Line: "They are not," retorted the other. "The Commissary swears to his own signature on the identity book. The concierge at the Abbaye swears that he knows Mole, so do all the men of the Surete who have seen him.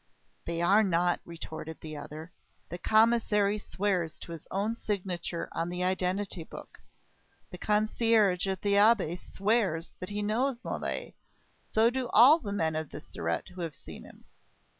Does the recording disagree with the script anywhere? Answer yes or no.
no